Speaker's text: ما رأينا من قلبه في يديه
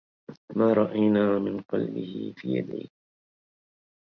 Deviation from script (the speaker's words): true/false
false